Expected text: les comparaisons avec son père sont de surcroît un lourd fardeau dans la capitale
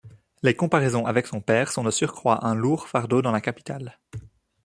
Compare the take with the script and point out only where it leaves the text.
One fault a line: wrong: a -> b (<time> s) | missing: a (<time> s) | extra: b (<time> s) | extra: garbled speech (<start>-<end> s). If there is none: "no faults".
no faults